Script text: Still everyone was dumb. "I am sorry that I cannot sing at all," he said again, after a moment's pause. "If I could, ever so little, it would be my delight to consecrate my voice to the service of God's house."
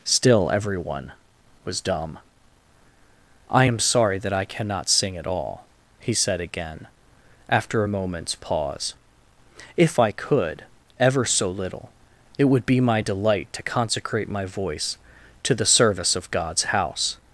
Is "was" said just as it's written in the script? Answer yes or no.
yes